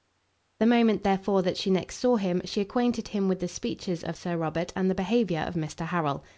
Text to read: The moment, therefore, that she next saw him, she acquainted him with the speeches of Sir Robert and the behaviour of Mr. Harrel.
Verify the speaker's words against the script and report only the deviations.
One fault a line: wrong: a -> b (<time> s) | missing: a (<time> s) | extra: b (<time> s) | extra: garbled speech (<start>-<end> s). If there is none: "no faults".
no faults